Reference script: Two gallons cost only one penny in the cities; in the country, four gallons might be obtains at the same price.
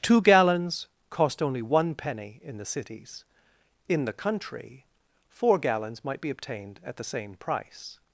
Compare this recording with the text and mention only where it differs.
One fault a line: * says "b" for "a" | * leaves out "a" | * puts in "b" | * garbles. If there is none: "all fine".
* says "obtained" for "obtains"